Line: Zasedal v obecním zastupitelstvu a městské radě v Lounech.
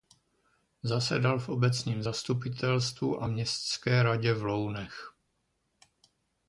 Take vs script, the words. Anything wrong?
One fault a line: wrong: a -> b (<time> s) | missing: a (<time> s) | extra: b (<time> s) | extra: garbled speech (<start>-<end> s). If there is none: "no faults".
no faults